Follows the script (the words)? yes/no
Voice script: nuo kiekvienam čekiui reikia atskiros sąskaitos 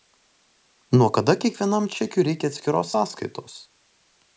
no